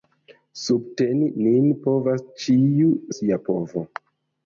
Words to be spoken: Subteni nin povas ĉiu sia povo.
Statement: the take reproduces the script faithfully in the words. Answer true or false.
true